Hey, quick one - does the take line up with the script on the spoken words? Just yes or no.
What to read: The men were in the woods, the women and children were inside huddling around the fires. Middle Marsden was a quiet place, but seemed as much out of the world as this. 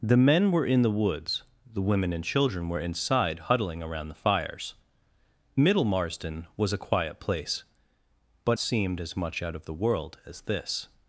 yes